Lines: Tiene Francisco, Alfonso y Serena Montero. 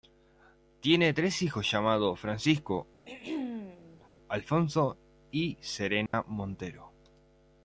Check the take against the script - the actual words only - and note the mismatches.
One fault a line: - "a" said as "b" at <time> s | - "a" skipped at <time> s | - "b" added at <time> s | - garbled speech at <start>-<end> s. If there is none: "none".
- "tres hijos llamados" added at 1.1 s